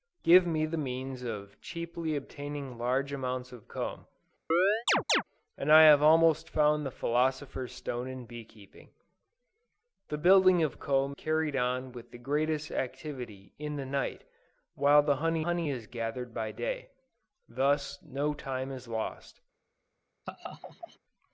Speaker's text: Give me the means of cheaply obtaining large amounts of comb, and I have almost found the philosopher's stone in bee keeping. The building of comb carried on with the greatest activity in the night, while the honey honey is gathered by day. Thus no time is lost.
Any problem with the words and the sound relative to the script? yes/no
yes